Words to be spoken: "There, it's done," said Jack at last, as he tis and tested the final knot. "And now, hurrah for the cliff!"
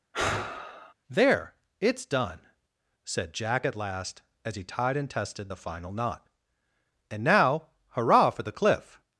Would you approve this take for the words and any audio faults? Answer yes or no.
no